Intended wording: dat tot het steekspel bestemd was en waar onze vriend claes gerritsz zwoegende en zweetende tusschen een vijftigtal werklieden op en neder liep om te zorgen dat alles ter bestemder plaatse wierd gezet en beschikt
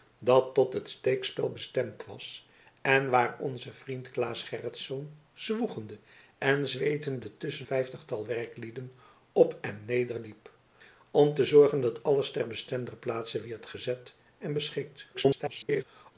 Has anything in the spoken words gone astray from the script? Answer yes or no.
yes